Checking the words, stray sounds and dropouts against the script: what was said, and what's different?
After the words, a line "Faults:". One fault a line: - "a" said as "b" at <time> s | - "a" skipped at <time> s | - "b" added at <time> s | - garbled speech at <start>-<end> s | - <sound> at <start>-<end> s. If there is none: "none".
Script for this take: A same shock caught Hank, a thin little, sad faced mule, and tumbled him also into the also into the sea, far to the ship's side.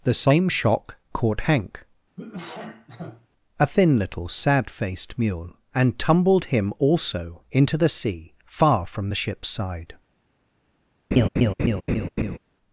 The same shock caught Hank, a thin little, sad faced mule, and tumbled him also into the sea, far from the ship's side.
Faults:
- "A" said as "The" at 0.0 s
- cough at 2.2-3.3 s
- "also into the" skipped at 7.9 s
- "to" said as "from" at 8.8 s
- laugh at 11.1-12.4 s